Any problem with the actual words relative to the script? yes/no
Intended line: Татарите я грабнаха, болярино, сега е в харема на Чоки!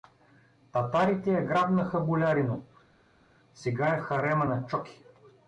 no